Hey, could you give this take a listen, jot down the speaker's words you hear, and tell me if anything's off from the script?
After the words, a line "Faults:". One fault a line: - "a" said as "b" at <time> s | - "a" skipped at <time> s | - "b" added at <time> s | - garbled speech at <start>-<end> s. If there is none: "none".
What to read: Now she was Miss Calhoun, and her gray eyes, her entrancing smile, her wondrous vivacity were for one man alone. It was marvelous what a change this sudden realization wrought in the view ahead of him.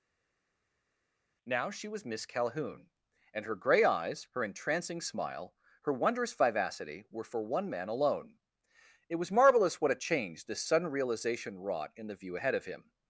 Now she was Miss Calhoun, and her gray eyes, her entrancing smile, her wondrous vivacity were for one man alone. It was marvelous what a change this sudden realization wrought in the view ahead of him.
Faults:
none